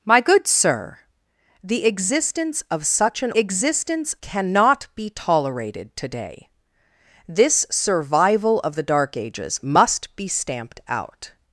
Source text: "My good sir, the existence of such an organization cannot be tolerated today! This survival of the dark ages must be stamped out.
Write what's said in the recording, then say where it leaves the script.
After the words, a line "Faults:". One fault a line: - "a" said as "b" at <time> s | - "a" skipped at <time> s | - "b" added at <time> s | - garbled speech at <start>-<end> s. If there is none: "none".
"My good sir, the existence of such an existence cannot be tolerated today! This survival of the dark ages must be stamped out.
Faults:
- "organization" said as "existence" at 3.4 s